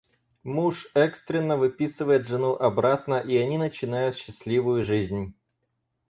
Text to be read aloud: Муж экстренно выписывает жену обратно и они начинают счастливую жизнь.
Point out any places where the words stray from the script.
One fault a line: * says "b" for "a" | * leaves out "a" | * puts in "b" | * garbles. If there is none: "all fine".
all fine